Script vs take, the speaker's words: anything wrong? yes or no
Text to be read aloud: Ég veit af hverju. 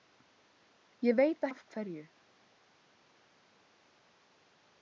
no